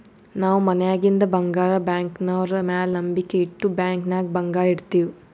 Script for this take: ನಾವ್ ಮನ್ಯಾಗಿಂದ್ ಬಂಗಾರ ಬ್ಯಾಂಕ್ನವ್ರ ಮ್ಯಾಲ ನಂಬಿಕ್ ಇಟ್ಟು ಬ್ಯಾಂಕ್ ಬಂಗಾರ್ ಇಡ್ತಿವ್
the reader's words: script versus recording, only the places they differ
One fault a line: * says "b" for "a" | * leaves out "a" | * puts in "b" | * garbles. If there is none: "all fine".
* puts in "ನಾಗ್"